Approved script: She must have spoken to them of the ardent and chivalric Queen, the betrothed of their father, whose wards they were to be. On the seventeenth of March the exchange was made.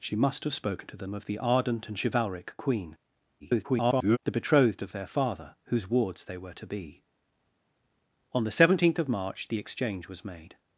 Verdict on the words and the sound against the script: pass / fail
fail